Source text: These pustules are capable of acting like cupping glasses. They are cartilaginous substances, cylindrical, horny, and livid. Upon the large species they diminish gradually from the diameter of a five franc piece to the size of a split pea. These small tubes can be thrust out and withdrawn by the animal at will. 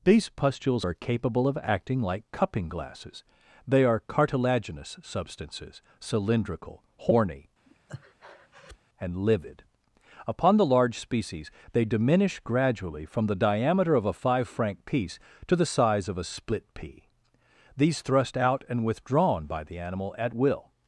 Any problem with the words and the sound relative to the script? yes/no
yes